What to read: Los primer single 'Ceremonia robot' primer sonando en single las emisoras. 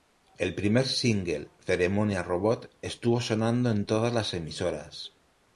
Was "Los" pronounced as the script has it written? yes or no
no